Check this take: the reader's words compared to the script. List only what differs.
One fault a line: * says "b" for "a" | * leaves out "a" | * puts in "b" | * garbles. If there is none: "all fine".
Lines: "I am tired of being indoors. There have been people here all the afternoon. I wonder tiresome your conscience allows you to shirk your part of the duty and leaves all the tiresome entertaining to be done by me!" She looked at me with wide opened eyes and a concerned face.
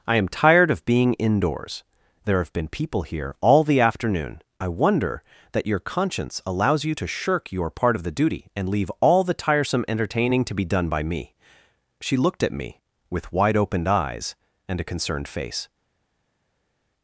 * says "that" for "tiresome"
* says "leave" for "leaves"